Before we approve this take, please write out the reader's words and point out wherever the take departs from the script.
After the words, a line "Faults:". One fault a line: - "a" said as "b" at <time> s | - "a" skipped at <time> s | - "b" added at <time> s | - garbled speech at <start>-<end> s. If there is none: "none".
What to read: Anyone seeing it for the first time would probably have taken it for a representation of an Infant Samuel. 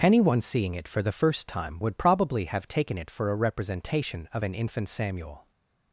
Anyone seeing it for the first time would probably have taken it for a representation of an Infant Samuel.
Faults:
none